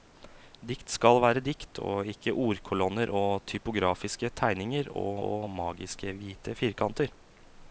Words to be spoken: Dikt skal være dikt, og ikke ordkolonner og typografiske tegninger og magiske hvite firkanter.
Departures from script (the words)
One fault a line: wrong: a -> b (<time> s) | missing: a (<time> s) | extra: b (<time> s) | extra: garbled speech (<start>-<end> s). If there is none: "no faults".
extra: og (5.3 s)